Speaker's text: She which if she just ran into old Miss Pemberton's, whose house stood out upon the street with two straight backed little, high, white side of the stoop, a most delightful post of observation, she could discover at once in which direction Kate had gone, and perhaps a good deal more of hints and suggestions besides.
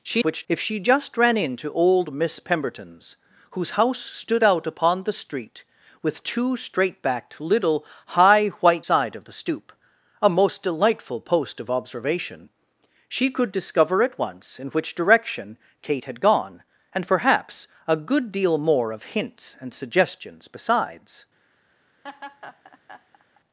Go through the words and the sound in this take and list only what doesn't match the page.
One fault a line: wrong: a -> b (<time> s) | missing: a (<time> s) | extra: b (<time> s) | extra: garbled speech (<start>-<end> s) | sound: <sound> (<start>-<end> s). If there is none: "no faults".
sound: laugh (22.0-23.4 s)